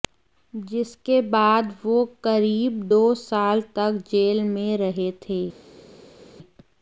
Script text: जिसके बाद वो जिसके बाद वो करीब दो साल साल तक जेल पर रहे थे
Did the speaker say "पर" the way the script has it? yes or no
no